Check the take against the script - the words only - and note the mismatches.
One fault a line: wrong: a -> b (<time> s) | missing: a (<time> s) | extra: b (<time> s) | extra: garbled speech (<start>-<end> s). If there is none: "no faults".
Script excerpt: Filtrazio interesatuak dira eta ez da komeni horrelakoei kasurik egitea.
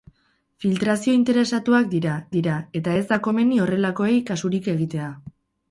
extra: dira (2.3 s)